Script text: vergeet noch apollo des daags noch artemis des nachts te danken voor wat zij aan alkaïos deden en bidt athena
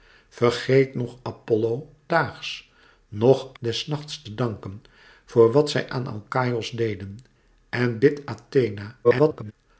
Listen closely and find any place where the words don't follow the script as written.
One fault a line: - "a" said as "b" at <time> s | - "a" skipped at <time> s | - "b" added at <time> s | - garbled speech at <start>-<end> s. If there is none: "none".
- "des" skipped at 1.9 s
- "artemis" skipped at 3.5 s
- garbled speech at 9.0-9.5 s